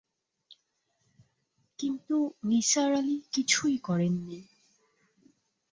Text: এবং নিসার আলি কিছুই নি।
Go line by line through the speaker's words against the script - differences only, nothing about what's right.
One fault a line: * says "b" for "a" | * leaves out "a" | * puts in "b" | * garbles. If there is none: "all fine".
* says "কিন্তু" for "এবং"
* puts in "করেন"